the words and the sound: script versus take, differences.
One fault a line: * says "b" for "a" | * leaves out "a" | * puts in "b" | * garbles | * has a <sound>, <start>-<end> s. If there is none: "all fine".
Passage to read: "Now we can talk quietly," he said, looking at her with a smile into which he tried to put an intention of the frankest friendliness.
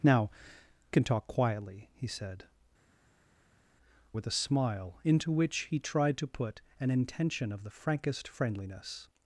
* leaves out "we"
* leaves out "looking at her"